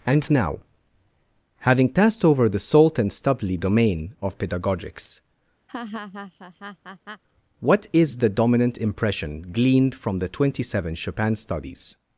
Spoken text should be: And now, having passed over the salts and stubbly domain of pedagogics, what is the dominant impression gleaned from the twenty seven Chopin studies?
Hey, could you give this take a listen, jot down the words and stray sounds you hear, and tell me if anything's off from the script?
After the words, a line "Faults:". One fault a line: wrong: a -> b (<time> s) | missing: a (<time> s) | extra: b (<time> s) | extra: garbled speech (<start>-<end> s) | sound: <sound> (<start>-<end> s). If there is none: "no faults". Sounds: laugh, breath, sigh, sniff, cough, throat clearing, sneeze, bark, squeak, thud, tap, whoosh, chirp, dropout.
And now, having passed over the salt and stubbly domain of pedagogics, what is the dominant impression gleaned from the twenty seven Chopin studies?
Faults:
wrong: salts -> salt (2.6 s)
sound: laugh (5.7-7.2 s)